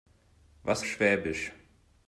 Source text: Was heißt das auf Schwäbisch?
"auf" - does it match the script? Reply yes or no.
no